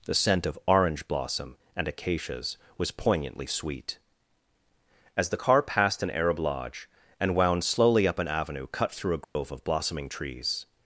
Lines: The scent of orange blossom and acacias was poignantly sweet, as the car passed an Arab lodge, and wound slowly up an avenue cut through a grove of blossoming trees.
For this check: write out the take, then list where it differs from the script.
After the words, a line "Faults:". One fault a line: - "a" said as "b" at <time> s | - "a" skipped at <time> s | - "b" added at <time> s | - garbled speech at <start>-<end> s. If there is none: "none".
The scent of orange blossom and acacias was poignantly sweet, as the car passed an Arab lodge, and wound slowly up an avenue cut through a grove of blossoming trees.
Faults:
none